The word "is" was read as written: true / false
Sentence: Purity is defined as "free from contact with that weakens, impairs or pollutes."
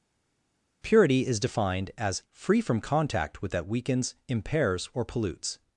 true